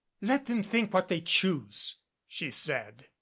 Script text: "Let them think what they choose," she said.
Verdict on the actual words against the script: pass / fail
pass